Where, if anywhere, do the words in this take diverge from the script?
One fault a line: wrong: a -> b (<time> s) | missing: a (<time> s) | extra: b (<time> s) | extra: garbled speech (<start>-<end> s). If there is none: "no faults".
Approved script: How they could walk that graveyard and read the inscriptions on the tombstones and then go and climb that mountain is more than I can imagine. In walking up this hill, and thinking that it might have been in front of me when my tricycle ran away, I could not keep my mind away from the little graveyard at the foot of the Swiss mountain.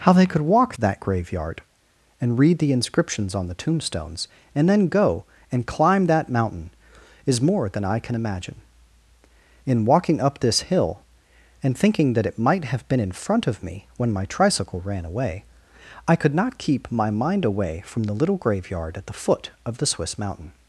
no faults